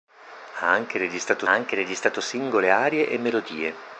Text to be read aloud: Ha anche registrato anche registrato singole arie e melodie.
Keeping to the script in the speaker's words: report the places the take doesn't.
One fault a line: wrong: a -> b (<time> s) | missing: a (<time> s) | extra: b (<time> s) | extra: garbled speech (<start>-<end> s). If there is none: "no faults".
no faults